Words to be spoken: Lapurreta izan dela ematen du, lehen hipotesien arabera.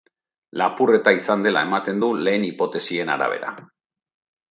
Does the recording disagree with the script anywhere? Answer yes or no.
no